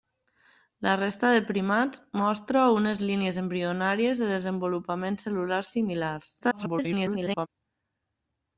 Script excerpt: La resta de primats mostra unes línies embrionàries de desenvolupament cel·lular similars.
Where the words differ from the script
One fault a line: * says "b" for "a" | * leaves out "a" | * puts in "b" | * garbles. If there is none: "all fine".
* garbles